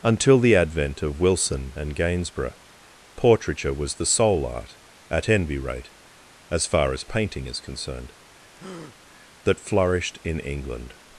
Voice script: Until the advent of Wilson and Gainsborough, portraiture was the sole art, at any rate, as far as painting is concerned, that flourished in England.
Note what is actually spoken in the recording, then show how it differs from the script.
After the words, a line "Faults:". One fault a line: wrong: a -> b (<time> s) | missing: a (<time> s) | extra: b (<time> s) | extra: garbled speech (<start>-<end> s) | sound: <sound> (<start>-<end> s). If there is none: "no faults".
Until the advent of Wilson and Gainsborough, portraiture was the sole art, at envy rate, as far as painting is concerned, that flourished in England.
Faults:
wrong: any -> envy (5.3 s)
sound: breath (8.6-9.0 s)